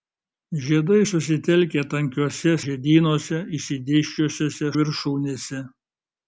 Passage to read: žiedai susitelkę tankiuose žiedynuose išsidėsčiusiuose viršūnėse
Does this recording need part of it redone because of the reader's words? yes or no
no